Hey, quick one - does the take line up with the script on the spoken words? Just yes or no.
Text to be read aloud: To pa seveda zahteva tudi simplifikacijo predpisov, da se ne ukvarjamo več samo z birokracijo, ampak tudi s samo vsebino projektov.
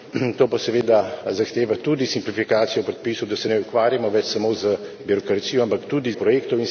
no